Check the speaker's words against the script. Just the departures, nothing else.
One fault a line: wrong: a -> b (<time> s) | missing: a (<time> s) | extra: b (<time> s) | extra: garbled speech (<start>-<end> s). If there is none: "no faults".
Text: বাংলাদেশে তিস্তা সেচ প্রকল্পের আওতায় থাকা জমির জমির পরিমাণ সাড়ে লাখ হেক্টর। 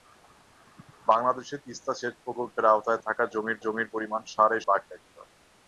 no faults